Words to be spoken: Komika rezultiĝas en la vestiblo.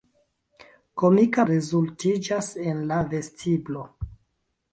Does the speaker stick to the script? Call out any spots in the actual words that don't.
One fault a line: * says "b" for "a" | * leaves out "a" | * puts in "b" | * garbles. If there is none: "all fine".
all fine